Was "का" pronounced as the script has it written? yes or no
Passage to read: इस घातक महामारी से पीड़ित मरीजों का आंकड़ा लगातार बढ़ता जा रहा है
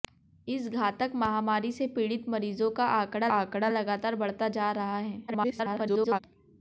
yes